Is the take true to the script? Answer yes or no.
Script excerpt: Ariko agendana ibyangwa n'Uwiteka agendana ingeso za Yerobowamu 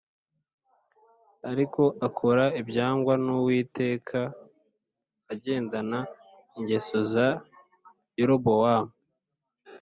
no